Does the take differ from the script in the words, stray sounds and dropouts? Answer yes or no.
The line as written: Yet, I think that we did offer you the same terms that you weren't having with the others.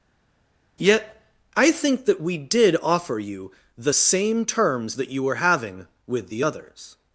yes